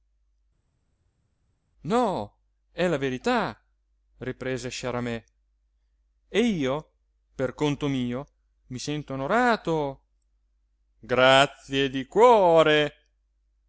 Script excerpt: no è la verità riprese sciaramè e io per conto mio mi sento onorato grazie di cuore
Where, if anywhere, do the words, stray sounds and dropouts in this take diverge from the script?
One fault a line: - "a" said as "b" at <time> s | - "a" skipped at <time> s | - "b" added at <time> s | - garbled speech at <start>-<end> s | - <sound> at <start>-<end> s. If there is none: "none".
none